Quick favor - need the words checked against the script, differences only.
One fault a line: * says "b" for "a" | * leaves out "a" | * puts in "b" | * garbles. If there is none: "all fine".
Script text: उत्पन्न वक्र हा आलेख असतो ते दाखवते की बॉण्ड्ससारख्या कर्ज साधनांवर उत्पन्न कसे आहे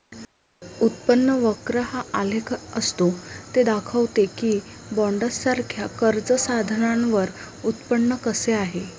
all fine